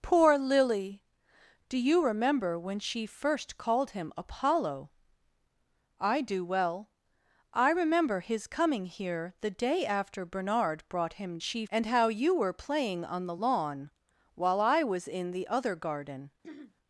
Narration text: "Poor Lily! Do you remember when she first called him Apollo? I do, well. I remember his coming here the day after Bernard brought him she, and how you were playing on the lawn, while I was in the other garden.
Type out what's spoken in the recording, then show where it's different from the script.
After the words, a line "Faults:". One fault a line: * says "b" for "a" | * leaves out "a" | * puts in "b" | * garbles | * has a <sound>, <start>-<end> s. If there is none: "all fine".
"Poor Lily! Do you remember when she first called him Apollo? I do, well. I remember his coming here the day after Bernard brought him she, and how you were playing on the lawn, while I was in the other garden.
Faults:
* has a throat clearing, 16.4-16.7 s